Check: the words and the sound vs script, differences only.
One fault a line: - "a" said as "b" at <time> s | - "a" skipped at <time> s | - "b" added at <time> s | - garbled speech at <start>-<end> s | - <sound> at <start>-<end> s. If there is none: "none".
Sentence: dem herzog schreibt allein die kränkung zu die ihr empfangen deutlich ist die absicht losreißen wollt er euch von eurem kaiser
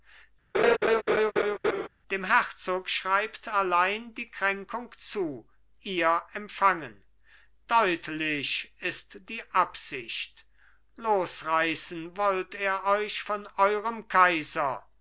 - laugh at 0.5-1.9 s
- "die" skipped at 5.5 s